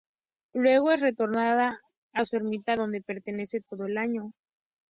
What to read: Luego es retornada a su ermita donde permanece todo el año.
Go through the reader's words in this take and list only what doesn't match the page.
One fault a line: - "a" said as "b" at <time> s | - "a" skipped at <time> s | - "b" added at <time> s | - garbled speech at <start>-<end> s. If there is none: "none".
none